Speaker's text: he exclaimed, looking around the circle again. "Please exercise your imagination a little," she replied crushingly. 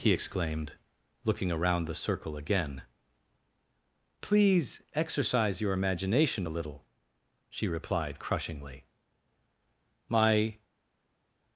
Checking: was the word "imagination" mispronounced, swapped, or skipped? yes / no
no